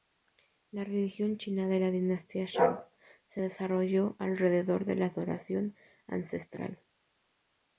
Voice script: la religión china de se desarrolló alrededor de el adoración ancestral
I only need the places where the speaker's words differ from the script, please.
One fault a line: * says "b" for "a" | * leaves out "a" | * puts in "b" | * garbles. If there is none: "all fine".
* puts in "la dinastía shang"
* says "la" for "el"